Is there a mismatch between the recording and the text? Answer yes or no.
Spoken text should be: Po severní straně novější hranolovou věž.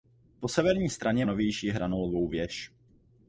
no